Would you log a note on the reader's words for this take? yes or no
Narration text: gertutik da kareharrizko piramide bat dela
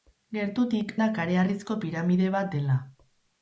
no